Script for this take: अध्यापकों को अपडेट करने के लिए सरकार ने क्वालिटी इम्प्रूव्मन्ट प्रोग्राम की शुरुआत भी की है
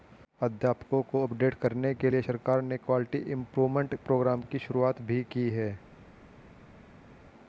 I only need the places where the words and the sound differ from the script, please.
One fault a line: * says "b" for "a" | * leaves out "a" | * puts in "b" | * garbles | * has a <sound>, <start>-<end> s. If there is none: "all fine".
all fine